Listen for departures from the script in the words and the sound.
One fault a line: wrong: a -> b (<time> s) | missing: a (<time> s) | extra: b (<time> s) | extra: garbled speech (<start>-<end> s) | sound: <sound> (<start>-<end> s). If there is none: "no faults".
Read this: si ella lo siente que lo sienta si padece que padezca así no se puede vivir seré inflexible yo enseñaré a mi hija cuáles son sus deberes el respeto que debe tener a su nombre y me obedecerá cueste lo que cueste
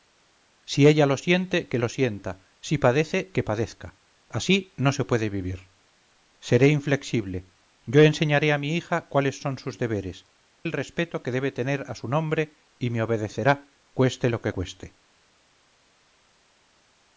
no faults